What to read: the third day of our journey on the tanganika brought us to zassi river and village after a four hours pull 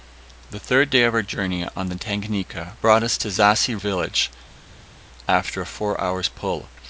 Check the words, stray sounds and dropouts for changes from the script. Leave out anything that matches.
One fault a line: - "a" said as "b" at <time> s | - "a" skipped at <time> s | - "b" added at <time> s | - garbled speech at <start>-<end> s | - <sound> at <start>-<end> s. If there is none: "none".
- "river and" skipped at 3.8 s